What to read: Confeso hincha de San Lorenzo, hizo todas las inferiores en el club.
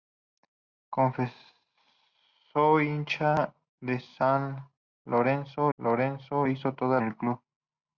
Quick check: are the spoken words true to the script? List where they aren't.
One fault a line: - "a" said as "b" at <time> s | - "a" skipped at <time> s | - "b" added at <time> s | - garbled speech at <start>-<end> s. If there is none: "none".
- "Lorenzo" added at 5.8 s
- "las inferiores en" skipped at 7.0 s